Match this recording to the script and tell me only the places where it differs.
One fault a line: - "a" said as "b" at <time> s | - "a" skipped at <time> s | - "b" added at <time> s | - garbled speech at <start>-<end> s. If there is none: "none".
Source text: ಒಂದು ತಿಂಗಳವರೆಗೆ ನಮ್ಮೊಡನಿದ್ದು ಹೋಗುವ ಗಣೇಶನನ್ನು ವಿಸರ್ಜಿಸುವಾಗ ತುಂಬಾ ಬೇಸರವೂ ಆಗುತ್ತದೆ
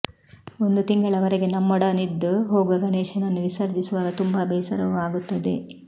none